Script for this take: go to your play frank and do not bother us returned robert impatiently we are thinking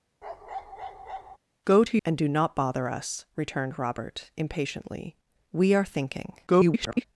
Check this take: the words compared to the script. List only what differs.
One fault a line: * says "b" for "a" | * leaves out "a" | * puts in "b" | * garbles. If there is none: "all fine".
* leaves out "your play frank"
* garbles